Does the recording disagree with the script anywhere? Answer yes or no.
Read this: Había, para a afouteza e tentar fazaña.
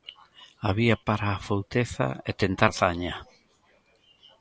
no